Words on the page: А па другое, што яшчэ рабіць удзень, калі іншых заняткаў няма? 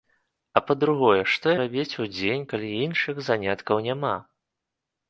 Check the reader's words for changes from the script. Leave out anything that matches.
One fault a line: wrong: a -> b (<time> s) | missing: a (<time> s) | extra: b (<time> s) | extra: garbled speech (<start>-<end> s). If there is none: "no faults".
missing: яшчэ (1.5 s)